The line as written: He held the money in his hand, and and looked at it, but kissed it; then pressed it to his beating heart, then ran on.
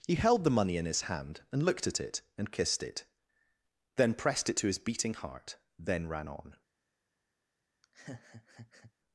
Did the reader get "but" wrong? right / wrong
wrong